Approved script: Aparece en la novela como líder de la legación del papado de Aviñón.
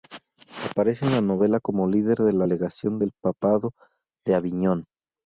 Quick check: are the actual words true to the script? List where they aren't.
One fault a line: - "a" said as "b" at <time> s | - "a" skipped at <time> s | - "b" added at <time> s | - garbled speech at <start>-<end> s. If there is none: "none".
none